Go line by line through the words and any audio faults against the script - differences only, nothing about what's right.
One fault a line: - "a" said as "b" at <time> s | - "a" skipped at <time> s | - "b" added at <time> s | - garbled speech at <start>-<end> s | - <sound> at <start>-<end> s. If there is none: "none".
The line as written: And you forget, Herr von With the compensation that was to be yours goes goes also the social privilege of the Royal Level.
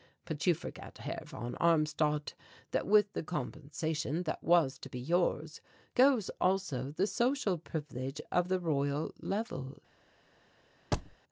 - "And" said as "But" at 0.2 s
- "Armstadt that" added at 1.6 s
- "goes" skipped at 6.3 s
- thud at 10.9-11.2 s